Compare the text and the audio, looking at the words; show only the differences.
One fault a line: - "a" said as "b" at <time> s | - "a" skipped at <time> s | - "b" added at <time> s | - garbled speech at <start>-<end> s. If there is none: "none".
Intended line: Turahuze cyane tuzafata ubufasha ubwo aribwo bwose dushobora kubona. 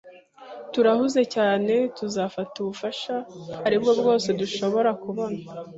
- "ubwo" skipped at 3.1 s